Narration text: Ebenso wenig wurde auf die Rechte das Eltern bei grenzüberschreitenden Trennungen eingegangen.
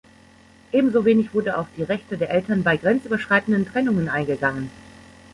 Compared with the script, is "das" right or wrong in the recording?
wrong